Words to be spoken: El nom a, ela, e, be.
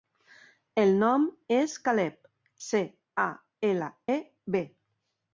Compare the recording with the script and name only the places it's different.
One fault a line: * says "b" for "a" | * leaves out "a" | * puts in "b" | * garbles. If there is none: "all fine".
* puts in "és Caleb ce"